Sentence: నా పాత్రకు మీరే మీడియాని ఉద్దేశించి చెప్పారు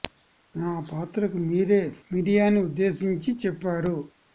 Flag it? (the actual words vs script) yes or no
no